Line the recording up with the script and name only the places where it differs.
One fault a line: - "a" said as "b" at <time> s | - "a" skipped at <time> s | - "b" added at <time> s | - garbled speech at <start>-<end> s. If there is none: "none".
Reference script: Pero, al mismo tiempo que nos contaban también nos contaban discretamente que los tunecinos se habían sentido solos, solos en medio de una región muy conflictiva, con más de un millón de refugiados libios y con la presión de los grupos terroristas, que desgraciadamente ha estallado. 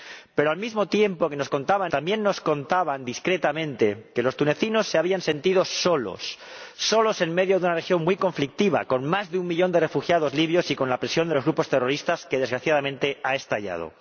none